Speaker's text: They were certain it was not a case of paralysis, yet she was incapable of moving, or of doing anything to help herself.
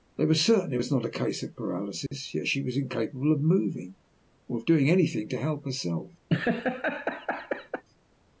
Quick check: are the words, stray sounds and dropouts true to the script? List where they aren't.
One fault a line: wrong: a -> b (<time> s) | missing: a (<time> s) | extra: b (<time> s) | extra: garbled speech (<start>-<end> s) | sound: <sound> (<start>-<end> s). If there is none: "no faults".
sound: dropout (2.1-2.1 s)
sound: laugh (6.3-7.8 s)